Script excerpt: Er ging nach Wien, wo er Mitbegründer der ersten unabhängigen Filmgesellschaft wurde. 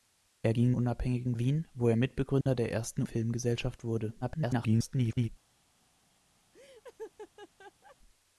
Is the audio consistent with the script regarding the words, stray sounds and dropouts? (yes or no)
no